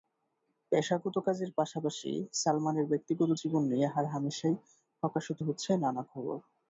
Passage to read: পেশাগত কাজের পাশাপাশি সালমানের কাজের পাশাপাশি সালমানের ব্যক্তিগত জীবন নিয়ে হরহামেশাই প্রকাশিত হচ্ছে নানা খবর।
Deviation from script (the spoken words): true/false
true